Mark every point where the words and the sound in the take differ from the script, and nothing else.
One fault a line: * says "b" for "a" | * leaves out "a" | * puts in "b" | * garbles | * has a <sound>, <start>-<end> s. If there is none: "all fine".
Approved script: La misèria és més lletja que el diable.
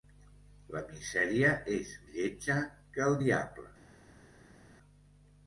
* leaves out "més"